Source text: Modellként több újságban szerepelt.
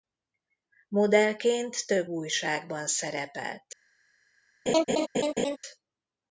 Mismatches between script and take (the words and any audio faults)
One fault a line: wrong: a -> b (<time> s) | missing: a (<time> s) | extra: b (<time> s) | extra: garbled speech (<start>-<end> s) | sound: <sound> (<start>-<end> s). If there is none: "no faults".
sound: laugh (4.7-5.6 s)